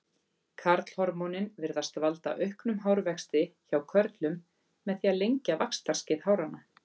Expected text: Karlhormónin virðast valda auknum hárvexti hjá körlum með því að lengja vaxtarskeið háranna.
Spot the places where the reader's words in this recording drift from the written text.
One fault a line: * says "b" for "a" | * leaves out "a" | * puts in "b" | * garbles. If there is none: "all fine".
all fine